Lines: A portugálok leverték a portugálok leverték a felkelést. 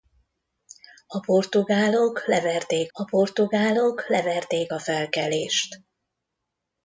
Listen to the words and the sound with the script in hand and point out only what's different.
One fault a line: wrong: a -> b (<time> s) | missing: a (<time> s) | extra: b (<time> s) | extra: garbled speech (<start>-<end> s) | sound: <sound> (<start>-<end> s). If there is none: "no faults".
no faults